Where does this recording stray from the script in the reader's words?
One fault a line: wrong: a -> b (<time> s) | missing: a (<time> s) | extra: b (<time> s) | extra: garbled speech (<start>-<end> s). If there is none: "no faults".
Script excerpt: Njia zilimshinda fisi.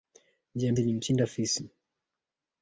no faults